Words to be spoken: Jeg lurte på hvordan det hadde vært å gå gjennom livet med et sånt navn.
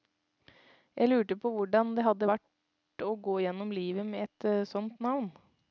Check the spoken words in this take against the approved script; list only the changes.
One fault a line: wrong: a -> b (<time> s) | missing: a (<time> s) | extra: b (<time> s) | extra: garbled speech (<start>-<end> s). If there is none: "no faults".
no faults